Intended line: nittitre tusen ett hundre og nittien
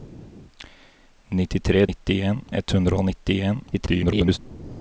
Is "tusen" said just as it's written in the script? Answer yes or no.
no